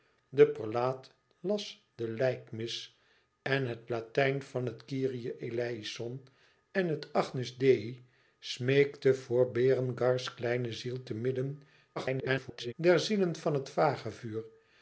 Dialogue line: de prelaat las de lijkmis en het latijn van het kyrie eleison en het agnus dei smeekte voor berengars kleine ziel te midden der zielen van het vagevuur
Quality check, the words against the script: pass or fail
fail